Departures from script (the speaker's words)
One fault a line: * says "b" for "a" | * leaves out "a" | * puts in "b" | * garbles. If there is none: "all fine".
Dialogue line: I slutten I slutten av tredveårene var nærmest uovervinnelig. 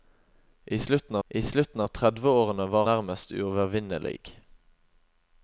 all fine